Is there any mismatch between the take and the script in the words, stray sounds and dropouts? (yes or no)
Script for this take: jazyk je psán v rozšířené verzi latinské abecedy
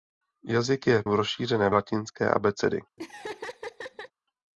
yes